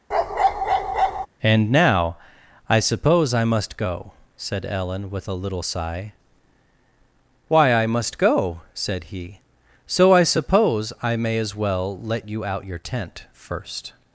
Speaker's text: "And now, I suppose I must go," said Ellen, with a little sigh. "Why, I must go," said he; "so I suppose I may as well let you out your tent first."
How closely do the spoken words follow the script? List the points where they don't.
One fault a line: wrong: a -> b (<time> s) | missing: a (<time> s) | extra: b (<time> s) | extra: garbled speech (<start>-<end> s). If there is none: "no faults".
no faults